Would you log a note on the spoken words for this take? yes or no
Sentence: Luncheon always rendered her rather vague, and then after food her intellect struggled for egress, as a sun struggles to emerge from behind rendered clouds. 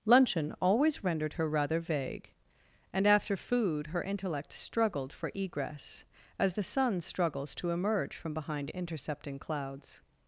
yes